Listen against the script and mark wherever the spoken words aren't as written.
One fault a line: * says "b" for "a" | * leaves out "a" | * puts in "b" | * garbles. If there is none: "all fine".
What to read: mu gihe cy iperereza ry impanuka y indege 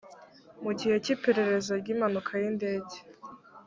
all fine